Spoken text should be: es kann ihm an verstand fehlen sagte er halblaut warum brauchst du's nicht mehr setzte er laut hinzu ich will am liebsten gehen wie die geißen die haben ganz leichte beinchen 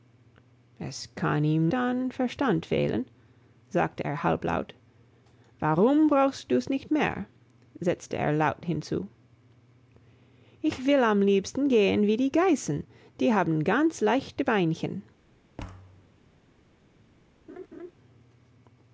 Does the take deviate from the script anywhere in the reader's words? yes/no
no